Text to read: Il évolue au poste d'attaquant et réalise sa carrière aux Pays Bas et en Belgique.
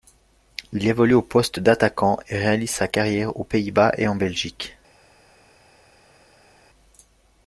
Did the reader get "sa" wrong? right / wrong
right